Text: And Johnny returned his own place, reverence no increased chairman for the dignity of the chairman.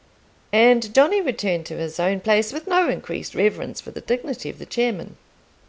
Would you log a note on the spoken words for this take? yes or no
yes